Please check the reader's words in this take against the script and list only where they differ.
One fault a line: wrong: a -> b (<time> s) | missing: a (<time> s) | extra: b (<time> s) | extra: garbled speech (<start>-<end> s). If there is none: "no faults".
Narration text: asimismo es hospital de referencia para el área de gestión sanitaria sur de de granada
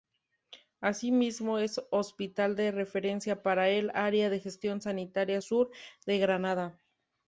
missing: de (6.2 s)